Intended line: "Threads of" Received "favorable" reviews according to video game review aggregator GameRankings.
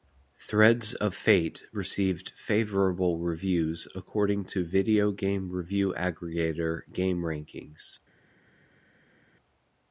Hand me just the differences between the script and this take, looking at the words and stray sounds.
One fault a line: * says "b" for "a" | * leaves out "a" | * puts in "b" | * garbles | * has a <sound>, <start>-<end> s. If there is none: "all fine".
* puts in "Fate"